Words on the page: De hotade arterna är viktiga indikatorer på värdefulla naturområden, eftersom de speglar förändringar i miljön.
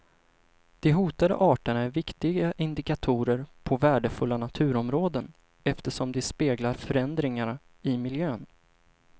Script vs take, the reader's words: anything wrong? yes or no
no